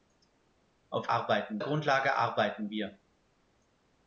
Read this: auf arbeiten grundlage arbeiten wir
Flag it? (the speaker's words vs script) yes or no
no